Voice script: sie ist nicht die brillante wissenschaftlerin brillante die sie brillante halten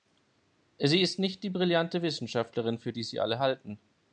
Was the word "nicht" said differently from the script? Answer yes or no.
no